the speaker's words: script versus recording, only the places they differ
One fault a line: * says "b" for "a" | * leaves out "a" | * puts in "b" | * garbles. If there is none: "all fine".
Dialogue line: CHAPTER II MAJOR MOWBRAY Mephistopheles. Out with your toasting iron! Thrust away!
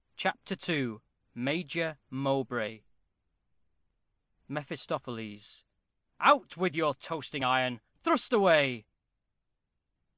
all fine